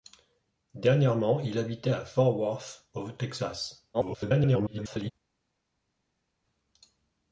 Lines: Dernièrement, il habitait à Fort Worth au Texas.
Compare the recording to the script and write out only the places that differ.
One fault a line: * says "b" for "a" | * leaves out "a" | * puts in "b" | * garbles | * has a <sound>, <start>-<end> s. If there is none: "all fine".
* garbles